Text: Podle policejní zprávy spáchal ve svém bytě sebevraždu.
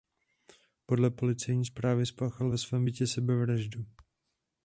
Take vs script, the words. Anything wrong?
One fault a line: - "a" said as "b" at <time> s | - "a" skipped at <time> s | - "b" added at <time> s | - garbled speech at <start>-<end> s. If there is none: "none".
none